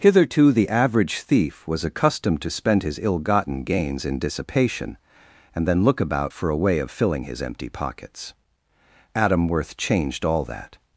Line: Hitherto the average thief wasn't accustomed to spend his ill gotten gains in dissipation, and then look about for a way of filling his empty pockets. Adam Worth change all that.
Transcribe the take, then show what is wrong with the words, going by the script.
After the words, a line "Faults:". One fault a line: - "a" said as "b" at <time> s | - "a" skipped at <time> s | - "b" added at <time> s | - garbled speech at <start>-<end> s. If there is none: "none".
Hitherto the average thief was accustomed to spend his ill gotten gains in dissipation, and then look about for a way of filling his empty pockets. Adam Worth changed all that.
Faults:
- "wasn't" said as "was" at 1.7 s
- "change" said as "changed" at 9.8 s